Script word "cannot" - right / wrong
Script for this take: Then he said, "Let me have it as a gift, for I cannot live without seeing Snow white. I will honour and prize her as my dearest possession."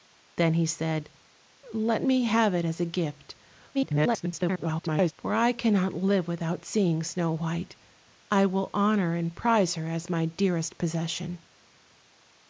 right